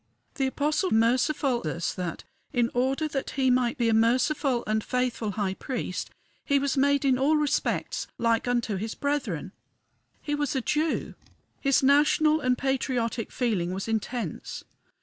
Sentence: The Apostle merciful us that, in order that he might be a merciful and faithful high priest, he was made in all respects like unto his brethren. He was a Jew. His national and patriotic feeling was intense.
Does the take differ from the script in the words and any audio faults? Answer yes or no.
no